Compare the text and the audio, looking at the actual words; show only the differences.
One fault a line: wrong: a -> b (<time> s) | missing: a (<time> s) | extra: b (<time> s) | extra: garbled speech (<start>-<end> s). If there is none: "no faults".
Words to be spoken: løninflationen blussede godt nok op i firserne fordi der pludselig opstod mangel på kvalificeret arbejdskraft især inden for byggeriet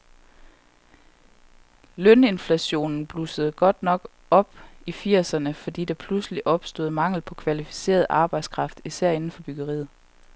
no faults